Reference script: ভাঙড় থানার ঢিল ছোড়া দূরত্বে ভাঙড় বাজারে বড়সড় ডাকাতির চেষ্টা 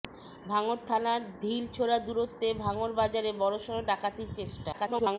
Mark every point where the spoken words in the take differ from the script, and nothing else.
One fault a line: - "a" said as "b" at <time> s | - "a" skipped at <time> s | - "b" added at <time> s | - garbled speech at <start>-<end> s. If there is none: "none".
- garbled speech at 4.7-5.2 s